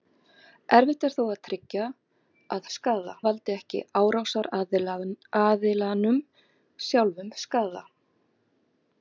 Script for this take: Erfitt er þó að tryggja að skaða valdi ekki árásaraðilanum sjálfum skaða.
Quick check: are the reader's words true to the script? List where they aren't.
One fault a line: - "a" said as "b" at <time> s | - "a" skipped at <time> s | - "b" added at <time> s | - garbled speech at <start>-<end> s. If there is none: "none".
none